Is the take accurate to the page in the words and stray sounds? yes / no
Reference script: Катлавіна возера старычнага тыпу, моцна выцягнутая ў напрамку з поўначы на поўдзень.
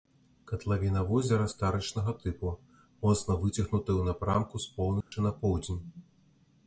no